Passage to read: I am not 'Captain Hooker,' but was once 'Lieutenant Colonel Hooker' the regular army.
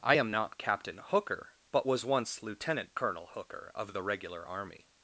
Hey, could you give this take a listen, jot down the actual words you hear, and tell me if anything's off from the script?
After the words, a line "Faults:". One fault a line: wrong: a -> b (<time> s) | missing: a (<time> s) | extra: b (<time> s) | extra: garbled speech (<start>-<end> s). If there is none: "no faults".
I am not 'Captain Hooker,' but was once 'Lieutenant Colonel Hooker' of the regular army.
Faults:
extra: of (3.7 s)